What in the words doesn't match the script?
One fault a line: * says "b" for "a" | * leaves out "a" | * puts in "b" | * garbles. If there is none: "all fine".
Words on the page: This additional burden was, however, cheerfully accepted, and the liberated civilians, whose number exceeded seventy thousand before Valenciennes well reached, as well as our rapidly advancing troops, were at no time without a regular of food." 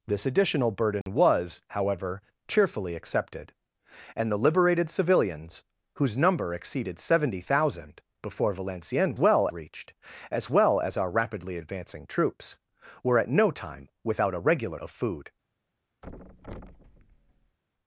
all fine